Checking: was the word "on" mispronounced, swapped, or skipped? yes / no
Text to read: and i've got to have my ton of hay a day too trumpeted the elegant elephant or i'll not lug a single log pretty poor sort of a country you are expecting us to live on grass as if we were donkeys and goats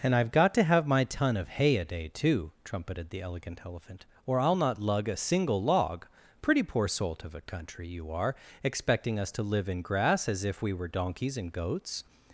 yes